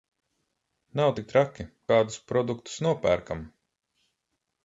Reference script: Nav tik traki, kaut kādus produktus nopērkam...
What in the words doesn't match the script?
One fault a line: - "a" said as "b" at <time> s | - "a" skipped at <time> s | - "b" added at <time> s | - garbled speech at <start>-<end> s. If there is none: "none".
- "kaut" skipped at 1.7 s